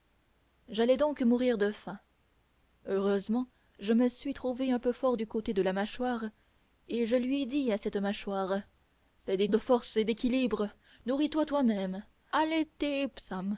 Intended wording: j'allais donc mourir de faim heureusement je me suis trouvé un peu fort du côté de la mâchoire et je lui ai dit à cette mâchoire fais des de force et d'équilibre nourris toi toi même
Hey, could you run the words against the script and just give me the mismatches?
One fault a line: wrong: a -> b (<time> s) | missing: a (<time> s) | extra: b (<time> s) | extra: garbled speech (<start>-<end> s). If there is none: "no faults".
no faults